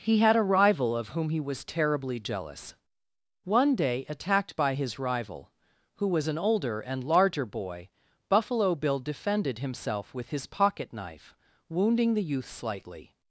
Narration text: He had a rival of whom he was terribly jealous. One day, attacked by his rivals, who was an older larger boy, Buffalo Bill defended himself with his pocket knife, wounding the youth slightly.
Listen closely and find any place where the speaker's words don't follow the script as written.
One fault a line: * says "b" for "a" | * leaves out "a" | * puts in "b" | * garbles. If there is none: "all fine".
* says "rival" for "rivals"
* puts in "and"